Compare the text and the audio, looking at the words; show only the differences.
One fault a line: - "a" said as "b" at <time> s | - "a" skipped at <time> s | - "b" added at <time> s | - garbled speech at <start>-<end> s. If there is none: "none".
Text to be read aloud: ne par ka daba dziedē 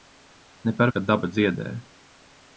none